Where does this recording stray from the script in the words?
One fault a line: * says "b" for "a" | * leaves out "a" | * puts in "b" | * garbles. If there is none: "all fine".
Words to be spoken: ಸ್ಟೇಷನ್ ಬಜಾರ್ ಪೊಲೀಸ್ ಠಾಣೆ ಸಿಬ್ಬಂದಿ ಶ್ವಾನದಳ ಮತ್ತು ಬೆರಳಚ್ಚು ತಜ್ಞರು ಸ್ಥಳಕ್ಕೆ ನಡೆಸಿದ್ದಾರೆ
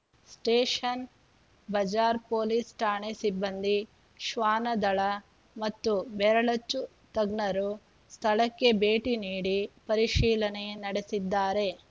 * puts in "ಭೇಟಿ ನೀಡಿ ಪರಿಶೀಲನೆ"